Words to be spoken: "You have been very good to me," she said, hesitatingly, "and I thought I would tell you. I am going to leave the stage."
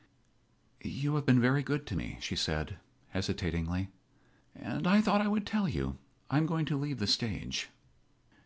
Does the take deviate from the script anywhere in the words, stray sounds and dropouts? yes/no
no